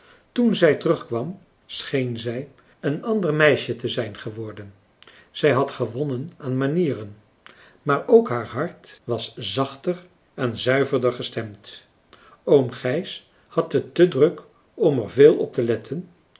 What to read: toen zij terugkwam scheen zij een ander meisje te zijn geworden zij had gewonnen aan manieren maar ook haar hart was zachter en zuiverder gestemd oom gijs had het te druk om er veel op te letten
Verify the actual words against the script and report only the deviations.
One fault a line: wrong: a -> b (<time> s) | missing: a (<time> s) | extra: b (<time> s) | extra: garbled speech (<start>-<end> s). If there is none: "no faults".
no faults